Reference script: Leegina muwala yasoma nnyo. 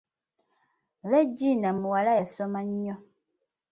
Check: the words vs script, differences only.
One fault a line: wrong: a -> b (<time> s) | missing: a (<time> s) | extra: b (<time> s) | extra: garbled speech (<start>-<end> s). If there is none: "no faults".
no faults